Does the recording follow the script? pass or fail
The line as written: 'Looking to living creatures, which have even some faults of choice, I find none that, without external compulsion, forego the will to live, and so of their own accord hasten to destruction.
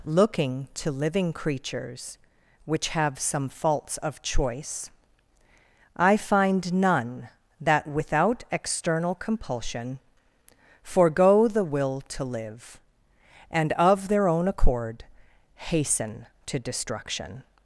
fail